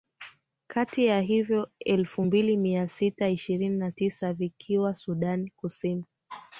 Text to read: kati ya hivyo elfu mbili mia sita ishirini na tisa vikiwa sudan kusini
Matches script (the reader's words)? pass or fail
pass